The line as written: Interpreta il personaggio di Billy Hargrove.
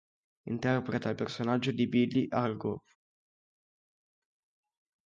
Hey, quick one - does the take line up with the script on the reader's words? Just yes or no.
yes